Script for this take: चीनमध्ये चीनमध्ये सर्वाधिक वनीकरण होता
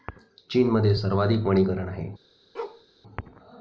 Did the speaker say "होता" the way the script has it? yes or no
no